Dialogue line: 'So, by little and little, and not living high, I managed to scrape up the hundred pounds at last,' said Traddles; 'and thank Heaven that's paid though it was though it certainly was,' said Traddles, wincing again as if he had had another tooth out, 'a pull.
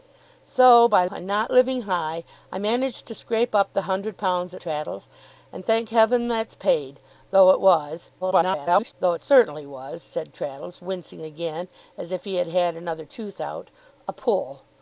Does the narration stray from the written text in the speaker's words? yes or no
yes